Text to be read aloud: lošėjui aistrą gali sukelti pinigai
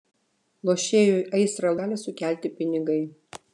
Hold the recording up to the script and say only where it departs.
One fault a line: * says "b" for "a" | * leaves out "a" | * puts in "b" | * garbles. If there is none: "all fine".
all fine